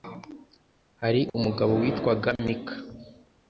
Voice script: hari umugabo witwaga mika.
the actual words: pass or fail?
pass